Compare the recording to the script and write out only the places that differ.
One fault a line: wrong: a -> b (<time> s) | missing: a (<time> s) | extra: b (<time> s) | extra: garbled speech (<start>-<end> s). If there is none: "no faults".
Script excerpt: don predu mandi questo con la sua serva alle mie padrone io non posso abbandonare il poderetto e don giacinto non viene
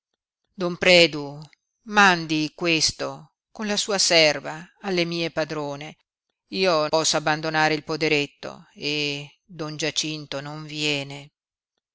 missing: non (6.9 s)